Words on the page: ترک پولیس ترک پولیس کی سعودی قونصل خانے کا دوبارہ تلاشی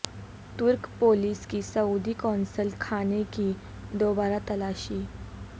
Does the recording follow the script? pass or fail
fail